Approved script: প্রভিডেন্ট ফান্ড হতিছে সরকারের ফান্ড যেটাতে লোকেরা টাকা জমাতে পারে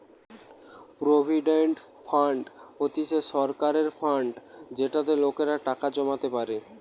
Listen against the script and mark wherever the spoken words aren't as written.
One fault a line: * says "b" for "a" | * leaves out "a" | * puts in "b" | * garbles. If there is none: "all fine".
all fine